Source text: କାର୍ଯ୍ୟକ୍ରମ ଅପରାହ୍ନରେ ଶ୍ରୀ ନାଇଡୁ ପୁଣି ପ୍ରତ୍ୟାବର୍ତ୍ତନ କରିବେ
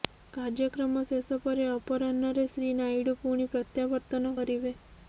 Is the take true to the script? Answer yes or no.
no